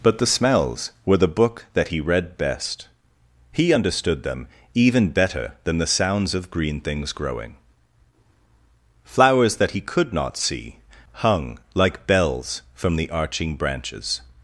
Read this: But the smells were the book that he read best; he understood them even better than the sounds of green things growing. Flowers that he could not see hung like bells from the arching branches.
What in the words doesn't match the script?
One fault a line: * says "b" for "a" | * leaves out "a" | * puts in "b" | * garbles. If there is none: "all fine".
all fine